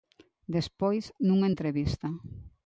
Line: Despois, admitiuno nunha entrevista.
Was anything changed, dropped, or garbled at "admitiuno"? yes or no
yes